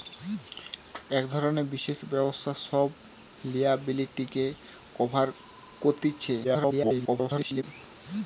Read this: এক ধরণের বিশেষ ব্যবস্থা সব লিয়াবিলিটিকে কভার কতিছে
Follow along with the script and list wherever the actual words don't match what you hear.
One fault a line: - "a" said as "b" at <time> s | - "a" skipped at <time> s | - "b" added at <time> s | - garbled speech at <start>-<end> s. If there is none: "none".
- garbled speech at 6.4-7.6 s